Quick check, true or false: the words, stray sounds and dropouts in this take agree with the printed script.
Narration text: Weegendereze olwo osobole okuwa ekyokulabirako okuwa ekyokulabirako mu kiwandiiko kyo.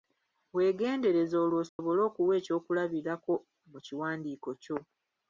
false